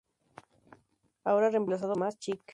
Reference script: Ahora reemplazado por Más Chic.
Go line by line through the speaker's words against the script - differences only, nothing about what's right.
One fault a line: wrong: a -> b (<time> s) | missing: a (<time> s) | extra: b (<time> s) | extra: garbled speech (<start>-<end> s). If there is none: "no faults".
missing: por (1.9 s)